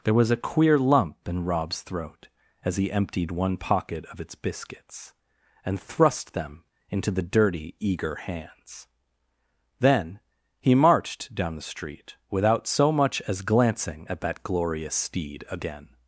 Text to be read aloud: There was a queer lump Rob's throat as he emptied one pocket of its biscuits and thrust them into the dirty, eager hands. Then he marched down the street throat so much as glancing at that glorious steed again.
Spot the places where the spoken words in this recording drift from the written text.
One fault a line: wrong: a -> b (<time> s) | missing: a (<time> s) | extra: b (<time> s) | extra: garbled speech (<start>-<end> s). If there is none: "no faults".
extra: in (1.3 s)
wrong: throat -> without (12.3 s)